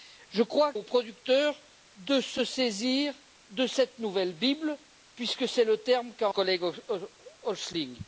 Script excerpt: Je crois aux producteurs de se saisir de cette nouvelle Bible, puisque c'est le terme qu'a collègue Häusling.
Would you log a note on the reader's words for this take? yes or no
no